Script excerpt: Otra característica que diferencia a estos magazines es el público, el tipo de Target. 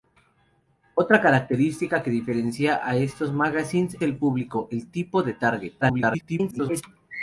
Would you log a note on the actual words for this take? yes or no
yes